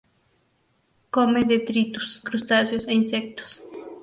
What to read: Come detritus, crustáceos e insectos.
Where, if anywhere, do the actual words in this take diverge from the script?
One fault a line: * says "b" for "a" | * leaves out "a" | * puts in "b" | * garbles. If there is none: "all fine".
all fine